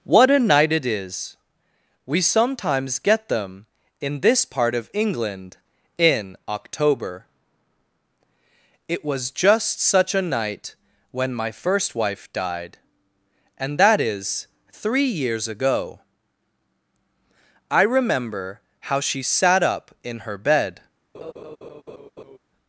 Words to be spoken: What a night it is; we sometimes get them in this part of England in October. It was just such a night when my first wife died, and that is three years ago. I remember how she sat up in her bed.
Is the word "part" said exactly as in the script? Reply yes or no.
yes